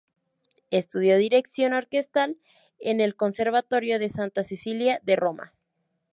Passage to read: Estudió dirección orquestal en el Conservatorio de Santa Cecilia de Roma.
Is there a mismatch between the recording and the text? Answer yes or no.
no